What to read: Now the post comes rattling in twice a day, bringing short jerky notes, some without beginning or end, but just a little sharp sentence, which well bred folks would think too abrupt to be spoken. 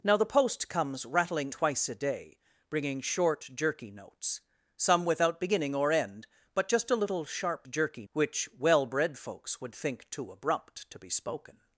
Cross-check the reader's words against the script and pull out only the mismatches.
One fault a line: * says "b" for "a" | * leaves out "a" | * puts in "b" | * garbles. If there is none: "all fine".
* leaves out "in"
* says "jerky" for "sentence"